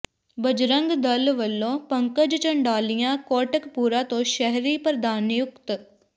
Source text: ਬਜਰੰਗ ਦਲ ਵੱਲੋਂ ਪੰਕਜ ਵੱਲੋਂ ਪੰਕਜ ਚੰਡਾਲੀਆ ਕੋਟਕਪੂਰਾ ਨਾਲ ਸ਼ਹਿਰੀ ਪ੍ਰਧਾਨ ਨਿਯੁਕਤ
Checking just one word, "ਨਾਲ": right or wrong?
wrong